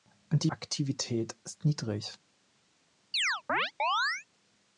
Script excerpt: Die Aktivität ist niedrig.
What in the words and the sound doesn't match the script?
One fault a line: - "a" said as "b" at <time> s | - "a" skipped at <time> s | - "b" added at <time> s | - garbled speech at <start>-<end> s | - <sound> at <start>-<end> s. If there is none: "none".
- chirp at 3.1-4.3 s